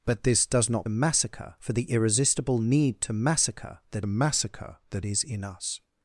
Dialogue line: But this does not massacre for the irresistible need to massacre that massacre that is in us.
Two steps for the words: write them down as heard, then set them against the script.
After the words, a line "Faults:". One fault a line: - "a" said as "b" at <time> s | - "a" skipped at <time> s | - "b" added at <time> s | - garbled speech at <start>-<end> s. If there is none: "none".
But this does not massacre for the irresistible need to massacre that massacre that is in us.
Faults:
none